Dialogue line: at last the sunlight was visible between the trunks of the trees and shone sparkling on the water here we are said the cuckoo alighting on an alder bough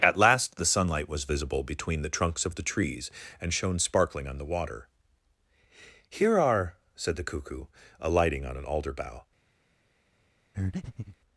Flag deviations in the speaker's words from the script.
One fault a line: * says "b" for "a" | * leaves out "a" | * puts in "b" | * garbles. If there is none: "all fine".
* leaves out "we"